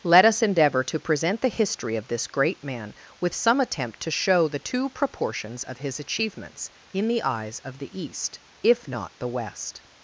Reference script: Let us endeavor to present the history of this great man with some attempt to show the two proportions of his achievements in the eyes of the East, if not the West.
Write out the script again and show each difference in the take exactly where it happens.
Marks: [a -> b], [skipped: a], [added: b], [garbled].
Let us endeavor to present the history of this great man with some attempt to show the two proportions of his achievements in the eyes of the East, if not the West.